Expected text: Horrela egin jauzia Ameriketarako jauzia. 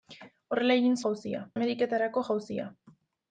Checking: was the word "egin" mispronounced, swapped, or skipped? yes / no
no